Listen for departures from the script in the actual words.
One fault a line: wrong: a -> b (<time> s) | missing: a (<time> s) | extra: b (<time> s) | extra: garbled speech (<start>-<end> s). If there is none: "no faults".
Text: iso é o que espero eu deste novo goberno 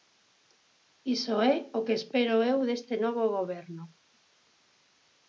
no faults